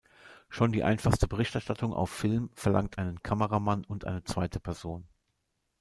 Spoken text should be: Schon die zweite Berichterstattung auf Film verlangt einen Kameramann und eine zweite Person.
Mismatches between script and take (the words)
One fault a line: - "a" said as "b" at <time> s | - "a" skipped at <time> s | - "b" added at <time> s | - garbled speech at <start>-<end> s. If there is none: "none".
- "zweite" said as "einfachste" at 0.8 s